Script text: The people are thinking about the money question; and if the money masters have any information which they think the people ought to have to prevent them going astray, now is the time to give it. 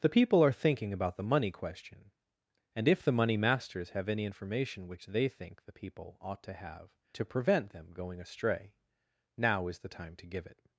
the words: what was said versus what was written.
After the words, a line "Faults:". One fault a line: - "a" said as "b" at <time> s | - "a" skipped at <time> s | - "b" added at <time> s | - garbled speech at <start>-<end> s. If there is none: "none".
The people are thinking about the money question; and if the money masters have any information which they think the people ought to have to prevent them going astray, now is the time to give it.
Faults:
none